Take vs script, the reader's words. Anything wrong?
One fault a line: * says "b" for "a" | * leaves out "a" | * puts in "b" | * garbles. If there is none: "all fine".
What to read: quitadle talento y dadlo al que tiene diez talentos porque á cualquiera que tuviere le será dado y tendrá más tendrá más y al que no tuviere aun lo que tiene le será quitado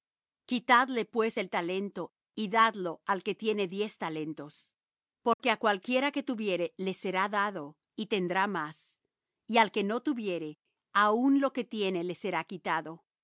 * puts in "pues el"
* leaves out "tendrá más"